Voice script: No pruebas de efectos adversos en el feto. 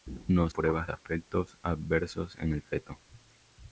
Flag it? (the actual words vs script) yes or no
no